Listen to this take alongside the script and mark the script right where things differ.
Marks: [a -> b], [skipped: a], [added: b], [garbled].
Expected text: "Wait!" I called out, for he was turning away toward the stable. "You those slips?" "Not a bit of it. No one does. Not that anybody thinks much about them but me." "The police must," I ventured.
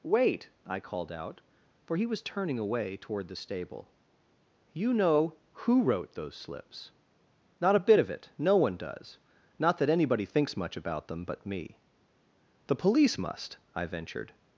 "Wait!" I called out, for he was turning away toward the stable. "You [added: know who wrote] those slips?" "Not a bit of it. No one does. Not that anybody thinks much about them but me." "The police must," I ventured.